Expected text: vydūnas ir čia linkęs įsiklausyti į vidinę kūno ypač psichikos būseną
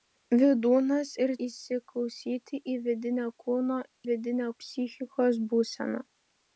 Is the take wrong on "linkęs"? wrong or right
wrong